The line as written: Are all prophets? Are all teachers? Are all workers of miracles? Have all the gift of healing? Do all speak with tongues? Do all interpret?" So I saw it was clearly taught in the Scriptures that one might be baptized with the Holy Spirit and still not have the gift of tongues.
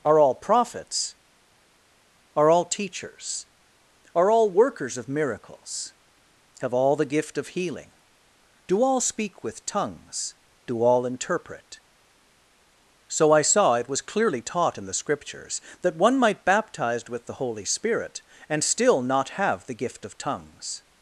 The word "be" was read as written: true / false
false